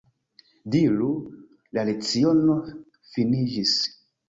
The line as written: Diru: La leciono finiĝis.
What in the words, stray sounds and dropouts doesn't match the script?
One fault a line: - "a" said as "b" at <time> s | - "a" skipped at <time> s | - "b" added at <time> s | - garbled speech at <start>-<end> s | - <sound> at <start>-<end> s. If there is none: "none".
none